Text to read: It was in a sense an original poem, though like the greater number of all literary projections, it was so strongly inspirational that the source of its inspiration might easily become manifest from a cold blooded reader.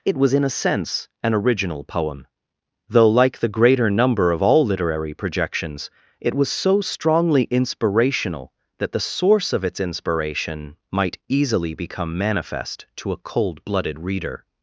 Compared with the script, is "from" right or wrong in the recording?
wrong